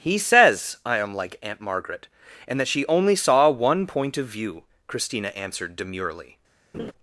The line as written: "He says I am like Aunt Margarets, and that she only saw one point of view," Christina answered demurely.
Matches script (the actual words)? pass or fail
fail